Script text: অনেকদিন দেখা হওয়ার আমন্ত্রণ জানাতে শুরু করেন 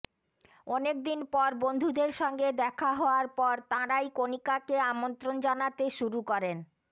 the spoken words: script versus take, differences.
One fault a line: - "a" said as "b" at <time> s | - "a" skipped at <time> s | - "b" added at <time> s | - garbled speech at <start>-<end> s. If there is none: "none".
- "পর বন্ধুদের সঙ্গে" added at 1.3 s
- "পর তাঁরাই কণিকাকে" added at 3.4 s